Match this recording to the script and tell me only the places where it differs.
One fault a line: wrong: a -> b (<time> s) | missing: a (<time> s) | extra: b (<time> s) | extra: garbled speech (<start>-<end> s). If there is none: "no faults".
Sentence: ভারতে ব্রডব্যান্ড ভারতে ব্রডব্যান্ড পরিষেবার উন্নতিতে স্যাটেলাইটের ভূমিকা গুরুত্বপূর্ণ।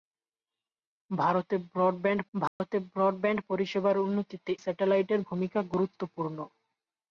no faults